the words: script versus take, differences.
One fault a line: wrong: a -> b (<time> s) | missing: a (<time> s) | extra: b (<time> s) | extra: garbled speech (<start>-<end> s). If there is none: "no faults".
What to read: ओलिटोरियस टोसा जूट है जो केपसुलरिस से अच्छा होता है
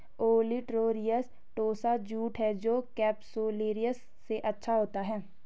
no faults